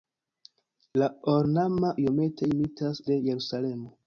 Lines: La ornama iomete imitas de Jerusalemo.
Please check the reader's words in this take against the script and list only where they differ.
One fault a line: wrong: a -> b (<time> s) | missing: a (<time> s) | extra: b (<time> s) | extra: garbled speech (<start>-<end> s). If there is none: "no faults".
no faults